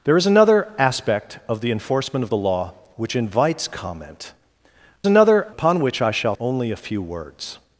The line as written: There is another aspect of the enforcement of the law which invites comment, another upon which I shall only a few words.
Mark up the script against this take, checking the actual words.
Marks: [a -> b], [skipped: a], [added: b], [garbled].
There is another aspect of the enforcement of the law which invites comment, another upon which I shall only a few words.